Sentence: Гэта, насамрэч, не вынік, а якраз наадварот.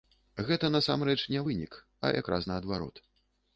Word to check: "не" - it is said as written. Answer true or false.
true